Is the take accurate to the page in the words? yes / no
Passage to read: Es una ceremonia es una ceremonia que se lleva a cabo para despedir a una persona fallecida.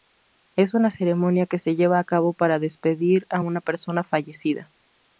no